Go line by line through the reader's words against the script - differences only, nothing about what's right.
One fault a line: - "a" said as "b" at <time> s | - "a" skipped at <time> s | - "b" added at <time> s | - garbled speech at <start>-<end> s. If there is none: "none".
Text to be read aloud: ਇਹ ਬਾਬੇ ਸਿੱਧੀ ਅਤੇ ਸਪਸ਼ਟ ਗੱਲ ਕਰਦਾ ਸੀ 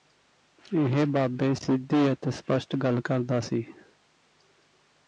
none